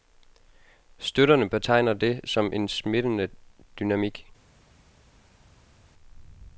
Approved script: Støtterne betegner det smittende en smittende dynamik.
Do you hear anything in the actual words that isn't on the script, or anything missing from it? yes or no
yes